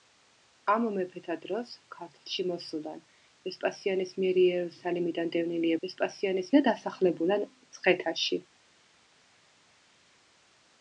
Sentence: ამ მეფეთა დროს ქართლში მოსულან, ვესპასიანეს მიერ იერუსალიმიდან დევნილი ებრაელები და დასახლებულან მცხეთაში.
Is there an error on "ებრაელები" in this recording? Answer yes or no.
yes